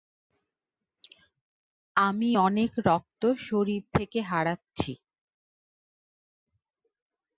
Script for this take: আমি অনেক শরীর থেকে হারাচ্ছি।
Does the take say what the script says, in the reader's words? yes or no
no